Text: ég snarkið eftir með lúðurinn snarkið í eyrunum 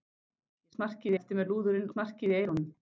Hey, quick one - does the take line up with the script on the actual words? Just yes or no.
yes